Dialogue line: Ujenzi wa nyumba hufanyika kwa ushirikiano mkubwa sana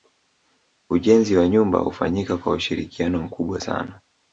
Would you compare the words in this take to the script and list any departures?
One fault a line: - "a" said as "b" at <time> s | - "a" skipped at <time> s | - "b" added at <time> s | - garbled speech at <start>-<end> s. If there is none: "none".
none